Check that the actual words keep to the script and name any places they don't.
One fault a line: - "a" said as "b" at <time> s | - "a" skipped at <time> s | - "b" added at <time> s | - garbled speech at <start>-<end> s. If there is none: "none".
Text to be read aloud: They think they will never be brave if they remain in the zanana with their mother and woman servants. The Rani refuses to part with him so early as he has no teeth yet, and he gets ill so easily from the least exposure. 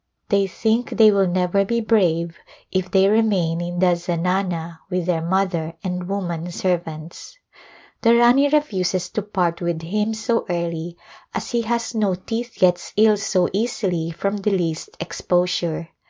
- "yet and he" skipped at 12.6 s